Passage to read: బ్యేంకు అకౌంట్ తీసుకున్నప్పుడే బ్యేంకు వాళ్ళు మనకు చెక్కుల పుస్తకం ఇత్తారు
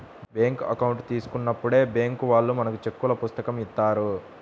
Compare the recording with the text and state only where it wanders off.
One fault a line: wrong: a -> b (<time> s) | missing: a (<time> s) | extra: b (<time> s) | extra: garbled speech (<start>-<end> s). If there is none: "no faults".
no faults